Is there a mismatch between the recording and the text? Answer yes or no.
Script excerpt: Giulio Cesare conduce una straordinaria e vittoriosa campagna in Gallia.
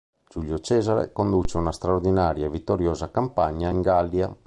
no